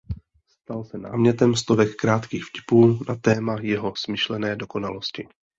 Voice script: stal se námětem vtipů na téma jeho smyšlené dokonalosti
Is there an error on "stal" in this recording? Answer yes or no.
no